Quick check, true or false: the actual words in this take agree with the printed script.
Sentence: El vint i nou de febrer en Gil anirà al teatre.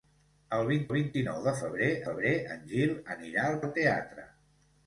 false